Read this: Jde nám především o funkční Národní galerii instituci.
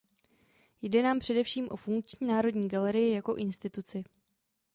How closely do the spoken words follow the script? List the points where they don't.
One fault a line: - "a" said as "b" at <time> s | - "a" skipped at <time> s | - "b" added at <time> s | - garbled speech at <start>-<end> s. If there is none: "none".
- "jako" added at 3.1 s